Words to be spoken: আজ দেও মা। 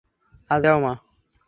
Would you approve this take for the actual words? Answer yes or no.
yes